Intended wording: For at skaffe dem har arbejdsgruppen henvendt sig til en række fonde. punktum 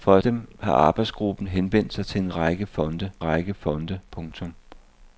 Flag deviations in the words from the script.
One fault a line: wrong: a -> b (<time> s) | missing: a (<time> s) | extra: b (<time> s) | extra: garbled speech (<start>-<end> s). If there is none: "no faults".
missing: skaffe (0.2 s)
extra: række fonde (3.2 s)